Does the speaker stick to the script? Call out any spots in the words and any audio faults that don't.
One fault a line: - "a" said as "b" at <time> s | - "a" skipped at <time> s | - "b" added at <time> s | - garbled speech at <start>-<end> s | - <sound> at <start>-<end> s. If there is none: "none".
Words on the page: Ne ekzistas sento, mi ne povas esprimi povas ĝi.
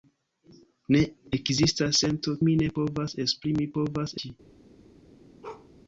- bark at 5.4-5.7 s